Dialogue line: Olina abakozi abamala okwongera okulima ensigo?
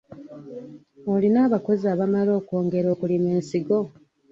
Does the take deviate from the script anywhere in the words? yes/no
no